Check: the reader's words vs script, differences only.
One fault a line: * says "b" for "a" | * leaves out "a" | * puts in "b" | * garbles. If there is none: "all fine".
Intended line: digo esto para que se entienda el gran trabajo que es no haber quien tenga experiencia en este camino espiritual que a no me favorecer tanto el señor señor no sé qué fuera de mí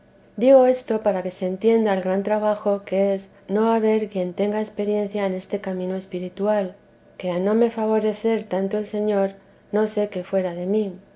* leaves out "señor"